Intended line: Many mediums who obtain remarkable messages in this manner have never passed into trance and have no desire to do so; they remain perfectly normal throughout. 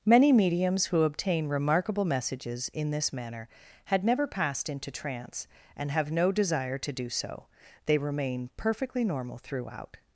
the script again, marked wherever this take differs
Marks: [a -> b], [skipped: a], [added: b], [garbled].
Many mediums who obtain remarkable messages in this manner [have -> had] never passed into trance and have no desire to do so; they remain perfectly normal throughout.